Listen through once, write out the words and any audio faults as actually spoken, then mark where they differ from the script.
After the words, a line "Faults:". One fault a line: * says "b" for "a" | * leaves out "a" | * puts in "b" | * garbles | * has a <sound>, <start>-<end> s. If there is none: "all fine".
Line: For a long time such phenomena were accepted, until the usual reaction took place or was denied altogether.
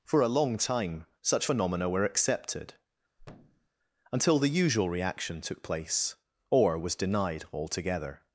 For a long time such phenomena were accepted, until the usual reaction took place or was denied altogether.
Faults:
* has a thud, 3.2-3.7 s